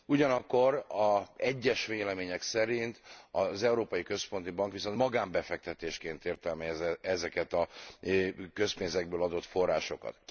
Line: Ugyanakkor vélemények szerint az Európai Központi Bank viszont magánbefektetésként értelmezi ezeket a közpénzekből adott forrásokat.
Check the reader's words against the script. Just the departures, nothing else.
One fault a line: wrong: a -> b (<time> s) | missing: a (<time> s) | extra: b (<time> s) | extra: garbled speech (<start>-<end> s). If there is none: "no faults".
extra: egyes (1.4 s)